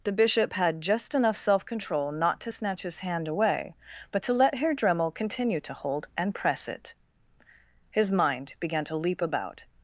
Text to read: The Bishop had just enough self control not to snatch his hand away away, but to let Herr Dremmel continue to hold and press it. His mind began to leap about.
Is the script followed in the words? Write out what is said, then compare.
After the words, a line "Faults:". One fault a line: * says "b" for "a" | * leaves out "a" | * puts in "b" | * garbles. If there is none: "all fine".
The Bishop had just enough self control not to snatch his hand away, but to let Herr Dremmel continue to hold and press it. His mind began to leap about.
Faults:
* leaves out "away"